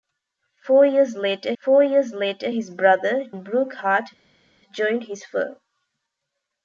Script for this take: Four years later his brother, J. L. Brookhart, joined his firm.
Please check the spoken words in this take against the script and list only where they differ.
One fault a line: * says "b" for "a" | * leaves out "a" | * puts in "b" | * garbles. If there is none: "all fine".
* puts in "four years later"
* leaves out "J L"